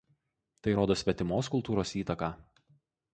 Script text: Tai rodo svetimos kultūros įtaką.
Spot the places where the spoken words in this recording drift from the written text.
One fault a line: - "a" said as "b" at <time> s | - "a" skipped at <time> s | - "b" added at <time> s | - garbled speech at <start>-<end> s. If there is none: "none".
none